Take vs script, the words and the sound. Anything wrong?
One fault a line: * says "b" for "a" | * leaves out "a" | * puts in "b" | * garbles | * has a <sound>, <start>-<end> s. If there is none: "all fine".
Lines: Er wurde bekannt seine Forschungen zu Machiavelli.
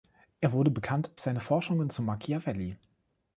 all fine